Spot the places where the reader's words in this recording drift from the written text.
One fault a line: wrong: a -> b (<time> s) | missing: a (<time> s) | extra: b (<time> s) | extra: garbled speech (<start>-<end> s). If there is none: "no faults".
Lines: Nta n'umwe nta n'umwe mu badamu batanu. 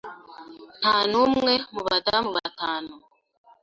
missing: nta n'umwe (1.5 s)